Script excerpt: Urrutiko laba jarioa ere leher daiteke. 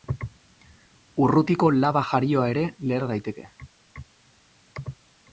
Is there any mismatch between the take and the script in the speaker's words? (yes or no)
no